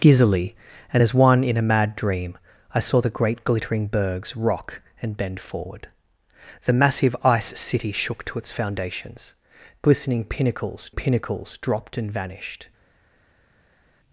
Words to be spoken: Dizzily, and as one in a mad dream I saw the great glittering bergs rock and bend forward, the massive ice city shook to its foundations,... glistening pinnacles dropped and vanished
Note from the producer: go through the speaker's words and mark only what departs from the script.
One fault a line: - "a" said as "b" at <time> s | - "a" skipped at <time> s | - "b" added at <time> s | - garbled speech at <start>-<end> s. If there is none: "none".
- "pinnacles" added at 10.9 s